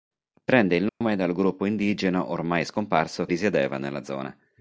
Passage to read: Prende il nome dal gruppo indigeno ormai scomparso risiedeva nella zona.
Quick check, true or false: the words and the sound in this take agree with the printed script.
false